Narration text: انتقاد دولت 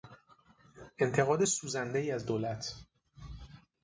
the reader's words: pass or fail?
fail